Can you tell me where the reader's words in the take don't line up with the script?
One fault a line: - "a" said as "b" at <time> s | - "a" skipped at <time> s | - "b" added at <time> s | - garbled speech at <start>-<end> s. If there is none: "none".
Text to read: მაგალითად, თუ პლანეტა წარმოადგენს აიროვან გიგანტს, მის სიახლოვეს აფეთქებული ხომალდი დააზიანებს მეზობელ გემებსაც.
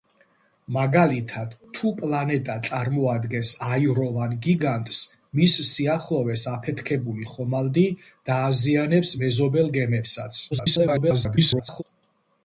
- garbled speech at 10.5-11.8 s